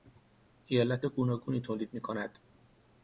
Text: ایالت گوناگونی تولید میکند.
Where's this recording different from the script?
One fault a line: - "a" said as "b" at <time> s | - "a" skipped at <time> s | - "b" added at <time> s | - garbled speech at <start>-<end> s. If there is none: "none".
none